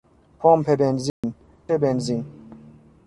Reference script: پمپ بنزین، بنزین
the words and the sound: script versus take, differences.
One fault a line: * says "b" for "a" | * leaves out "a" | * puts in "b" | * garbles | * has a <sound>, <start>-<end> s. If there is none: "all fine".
* has a dropout, 1.1-1.2 s